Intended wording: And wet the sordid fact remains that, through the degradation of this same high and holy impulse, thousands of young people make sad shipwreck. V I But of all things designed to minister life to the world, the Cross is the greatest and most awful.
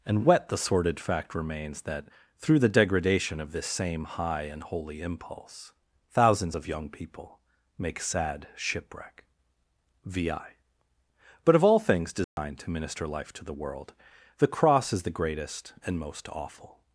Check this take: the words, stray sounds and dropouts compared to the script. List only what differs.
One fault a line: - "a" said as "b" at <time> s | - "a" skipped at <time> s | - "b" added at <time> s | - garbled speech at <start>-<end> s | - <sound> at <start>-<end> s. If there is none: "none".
- dropout at 12.2-12.4 s